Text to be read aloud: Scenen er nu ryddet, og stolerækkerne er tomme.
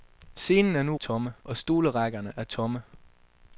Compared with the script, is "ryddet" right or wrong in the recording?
wrong